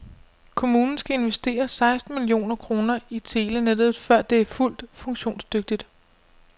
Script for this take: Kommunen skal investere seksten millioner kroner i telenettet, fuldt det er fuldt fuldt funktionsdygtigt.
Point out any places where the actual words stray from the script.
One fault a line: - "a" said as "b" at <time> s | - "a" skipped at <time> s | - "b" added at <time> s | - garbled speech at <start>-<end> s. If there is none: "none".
- "fuldt" said as "før" at 4.0 s
- "fuldt" skipped at 4.8 s